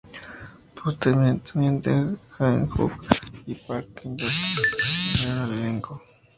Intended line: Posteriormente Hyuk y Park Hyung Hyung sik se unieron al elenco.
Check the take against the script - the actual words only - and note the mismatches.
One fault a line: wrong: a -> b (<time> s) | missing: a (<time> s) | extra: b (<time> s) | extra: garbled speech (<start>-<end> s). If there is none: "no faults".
extra: Jang (2.4 s)
missing: Hyung (4.2 s)